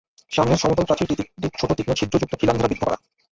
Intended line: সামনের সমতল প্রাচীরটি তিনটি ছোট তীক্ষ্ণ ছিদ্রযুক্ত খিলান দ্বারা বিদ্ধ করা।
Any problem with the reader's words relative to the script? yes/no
no